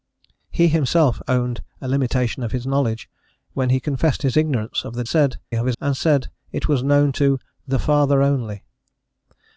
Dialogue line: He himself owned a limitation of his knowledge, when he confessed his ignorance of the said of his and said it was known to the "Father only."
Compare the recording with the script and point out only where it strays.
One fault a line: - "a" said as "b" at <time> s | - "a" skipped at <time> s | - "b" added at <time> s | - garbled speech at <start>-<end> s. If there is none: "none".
none